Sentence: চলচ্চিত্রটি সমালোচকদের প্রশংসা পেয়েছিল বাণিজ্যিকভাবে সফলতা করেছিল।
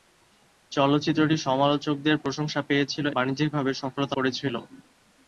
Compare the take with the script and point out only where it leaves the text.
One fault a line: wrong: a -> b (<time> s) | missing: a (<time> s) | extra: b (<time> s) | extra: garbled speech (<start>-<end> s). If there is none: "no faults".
no faults